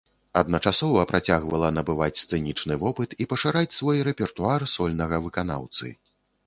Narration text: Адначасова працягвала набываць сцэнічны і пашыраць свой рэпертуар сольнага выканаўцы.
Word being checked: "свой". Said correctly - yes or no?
yes